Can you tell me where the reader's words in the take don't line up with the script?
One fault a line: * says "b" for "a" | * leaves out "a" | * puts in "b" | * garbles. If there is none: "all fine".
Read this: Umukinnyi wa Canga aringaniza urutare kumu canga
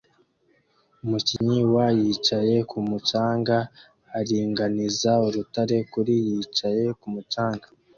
* puts in "Yicaye kumu"
* puts in "kuri yicaye"